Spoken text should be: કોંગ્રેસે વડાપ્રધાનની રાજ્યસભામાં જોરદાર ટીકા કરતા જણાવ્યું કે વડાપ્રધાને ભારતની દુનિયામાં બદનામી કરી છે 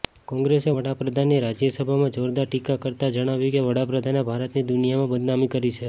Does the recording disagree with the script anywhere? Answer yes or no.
no